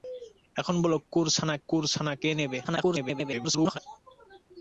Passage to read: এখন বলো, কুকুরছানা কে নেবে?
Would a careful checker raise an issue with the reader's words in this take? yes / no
yes